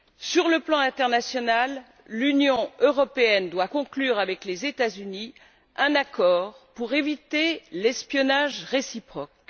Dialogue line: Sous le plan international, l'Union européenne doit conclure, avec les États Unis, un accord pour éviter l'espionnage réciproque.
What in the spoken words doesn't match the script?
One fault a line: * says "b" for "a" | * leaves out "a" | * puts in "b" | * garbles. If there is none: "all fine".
* says "Sur" for "Sous"